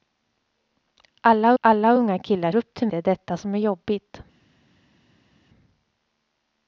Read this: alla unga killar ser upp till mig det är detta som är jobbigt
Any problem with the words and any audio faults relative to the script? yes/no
yes